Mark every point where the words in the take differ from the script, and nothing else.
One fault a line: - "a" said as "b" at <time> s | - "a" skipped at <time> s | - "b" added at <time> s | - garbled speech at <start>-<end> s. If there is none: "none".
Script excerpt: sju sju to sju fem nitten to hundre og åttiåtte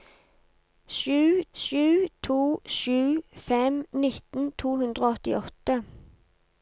none